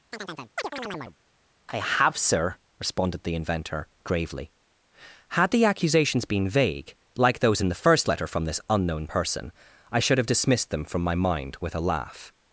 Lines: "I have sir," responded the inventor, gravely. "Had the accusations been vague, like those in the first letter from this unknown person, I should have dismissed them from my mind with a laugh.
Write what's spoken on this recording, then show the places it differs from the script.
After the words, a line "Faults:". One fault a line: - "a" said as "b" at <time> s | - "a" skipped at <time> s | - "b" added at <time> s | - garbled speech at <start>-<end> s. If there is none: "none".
"I have sir," responded the inventor, gravely. "Had the accusations been vague, like those in the first letter from this unknown person, I should have dismissed them from my mind with a laugh.
Faults:
none